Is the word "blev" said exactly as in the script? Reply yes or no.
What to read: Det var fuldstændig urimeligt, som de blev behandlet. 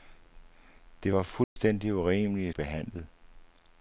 no